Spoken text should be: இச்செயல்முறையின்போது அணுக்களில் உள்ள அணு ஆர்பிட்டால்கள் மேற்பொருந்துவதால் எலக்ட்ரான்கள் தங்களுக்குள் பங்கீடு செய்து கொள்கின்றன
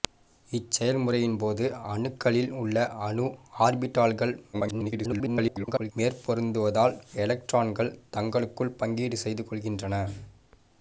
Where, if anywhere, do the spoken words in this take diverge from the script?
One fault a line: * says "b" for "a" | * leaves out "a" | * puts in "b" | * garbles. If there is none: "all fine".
* garbles